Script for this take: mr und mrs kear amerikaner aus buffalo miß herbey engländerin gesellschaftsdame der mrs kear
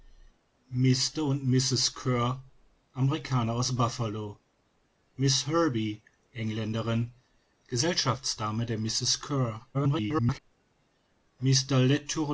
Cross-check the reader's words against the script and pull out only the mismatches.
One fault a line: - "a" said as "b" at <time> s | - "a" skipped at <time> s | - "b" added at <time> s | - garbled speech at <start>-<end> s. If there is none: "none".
- garbled speech at 9.7-10.4 s